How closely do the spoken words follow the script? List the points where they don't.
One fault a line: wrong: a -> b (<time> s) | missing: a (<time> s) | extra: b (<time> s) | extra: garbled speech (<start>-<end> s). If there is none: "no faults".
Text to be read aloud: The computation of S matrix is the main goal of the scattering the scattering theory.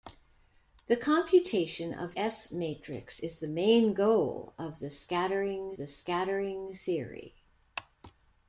no faults